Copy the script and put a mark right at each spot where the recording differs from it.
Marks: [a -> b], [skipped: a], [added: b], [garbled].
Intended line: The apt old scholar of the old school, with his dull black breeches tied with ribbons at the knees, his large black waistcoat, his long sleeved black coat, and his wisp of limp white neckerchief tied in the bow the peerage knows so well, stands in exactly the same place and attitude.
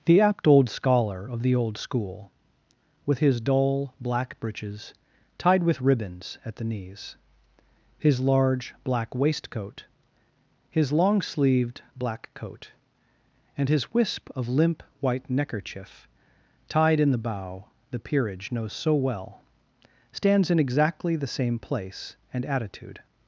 The apt old scholar of the old school, with his dull black breeches tied with ribbons at the knees, his large black waistcoat, his long sleeved black coat, and his wisp of limp white neckerchief tied in the bow the peerage knows so well, stands in exactly the same place and attitude.